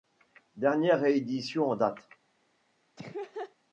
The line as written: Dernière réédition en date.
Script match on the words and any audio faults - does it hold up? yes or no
no